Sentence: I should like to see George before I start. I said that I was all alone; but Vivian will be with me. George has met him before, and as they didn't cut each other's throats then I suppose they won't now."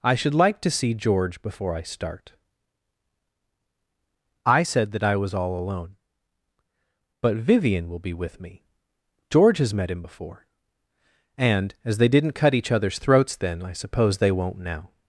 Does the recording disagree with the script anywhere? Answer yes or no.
no